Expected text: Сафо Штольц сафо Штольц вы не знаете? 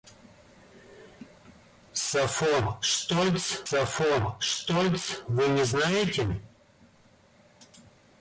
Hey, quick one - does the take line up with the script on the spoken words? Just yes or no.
yes